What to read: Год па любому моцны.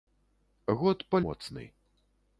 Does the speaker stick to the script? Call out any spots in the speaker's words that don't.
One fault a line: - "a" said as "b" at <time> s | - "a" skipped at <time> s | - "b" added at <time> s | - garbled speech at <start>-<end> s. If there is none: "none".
- "любому" skipped at 1.2 s